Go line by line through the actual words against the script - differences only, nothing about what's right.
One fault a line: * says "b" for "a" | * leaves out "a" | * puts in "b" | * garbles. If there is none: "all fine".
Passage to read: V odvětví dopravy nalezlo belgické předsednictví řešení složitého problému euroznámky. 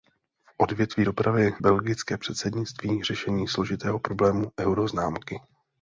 * leaves out "nalezlo"